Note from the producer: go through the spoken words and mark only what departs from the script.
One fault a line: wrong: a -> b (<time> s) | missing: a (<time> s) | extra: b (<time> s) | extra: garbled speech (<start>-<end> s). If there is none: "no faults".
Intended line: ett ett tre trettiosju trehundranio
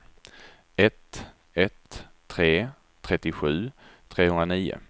no faults